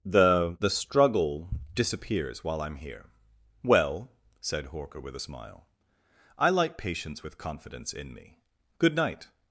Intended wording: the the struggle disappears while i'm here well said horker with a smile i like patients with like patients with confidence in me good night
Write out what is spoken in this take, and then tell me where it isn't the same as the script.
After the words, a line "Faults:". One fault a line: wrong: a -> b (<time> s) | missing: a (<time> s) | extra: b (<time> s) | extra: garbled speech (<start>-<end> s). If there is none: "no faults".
the the struggle disappears while i'm here well said horker with a smile i like patients with confidence in me good night
Faults:
missing: like patients with (7.4 s)